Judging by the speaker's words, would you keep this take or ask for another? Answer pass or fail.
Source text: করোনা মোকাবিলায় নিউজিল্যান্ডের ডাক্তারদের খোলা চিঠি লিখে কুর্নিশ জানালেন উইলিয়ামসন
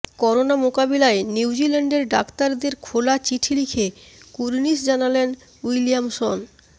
pass